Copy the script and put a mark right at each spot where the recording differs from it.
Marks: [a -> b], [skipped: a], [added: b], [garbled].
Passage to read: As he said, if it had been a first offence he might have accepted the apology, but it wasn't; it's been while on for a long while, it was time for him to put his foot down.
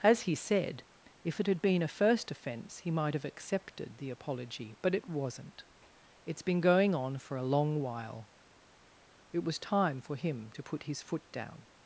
As he said, if it had been a first offence he might have accepted the apology, but it wasn't; it's been [while -> going] on for a long while, it was time for him to put his foot down.